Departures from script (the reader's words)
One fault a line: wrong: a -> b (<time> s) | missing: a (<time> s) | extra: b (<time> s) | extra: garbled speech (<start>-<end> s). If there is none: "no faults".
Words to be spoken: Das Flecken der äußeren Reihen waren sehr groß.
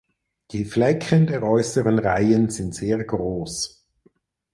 wrong: Das -> Die (0.5 s)
wrong: waren -> sind (2.5 s)